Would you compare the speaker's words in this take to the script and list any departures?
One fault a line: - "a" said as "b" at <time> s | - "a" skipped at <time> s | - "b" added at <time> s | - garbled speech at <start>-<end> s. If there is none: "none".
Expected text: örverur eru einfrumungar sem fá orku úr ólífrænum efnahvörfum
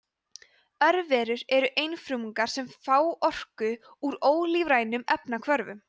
none